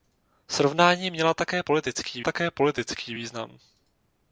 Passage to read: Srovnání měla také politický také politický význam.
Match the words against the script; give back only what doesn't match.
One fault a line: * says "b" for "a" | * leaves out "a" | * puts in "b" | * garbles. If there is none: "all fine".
all fine